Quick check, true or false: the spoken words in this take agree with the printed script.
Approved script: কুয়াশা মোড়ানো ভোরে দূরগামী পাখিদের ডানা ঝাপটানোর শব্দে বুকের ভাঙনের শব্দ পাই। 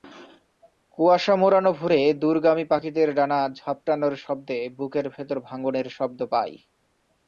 false